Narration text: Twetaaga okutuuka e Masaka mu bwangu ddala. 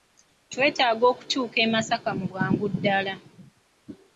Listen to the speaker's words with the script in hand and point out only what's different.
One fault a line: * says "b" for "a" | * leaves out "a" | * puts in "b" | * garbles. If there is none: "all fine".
all fine